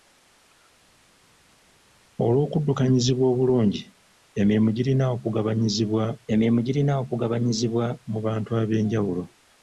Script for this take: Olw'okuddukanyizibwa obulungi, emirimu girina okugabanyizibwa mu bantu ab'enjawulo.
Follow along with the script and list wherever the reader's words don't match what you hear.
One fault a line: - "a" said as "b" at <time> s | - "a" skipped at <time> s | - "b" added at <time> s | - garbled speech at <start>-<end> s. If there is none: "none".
- "emirimu girina okugabanyizibwa" added at 6.3 s